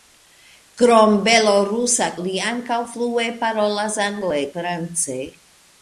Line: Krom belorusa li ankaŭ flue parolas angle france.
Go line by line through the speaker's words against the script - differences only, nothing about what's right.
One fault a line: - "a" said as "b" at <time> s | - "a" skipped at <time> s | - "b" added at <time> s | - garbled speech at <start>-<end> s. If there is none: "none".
none